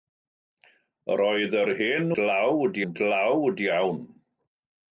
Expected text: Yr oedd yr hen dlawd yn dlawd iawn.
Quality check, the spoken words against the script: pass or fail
pass